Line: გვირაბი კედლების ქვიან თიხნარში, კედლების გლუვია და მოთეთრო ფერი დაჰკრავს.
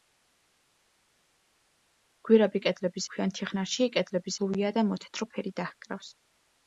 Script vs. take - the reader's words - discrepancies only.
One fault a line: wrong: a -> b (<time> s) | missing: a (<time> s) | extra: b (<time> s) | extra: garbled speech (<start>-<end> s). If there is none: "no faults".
no faults